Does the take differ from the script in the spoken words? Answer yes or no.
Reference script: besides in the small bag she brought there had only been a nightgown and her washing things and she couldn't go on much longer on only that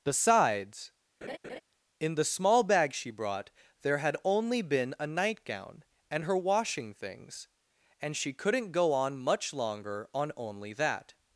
no